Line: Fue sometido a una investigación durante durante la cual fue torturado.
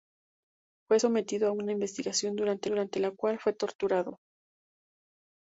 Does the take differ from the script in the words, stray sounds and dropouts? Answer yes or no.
no